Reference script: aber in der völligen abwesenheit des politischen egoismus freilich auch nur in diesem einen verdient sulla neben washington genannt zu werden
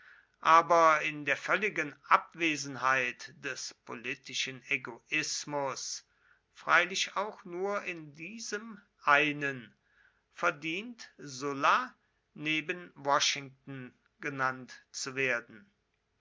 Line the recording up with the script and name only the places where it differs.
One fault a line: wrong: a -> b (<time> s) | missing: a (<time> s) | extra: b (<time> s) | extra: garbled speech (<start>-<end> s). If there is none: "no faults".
no faults